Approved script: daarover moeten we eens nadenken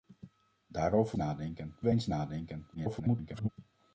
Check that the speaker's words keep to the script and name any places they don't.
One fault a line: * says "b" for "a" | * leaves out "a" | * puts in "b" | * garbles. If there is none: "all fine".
* says "nadenken" for "moeten"
* garbles